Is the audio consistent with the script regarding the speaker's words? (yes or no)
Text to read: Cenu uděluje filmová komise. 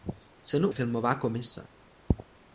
no